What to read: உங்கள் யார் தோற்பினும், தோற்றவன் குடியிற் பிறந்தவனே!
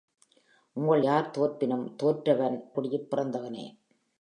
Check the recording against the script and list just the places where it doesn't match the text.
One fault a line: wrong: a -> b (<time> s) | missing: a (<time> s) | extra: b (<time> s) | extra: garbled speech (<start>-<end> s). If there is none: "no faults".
no faults